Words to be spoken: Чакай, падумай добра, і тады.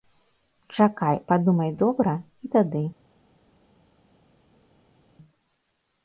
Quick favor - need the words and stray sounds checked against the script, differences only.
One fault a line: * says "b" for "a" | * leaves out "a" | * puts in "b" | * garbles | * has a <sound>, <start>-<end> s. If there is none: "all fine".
all fine